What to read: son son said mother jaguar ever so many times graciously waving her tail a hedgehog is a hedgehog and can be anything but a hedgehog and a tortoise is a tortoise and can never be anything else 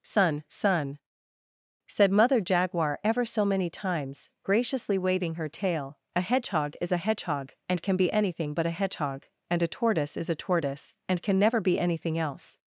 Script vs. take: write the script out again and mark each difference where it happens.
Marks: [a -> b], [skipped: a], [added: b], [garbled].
son son said mother jaguar ever so many times graciously waving her tail a hedgehog is a hedgehog and can be anything but a hedgehog and a tortoise is a tortoise and can never be anything else